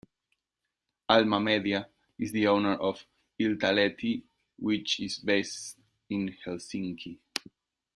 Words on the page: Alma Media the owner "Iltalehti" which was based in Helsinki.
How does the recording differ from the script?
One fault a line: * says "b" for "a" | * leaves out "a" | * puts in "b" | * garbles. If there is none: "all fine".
* puts in "is"
* puts in "of"
* says "is" for "was"